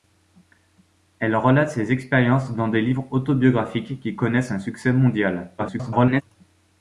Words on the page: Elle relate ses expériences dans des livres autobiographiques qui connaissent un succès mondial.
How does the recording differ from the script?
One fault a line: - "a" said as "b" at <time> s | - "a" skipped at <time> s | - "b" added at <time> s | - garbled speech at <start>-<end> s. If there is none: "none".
- garbled speech at 5.6-6.2 s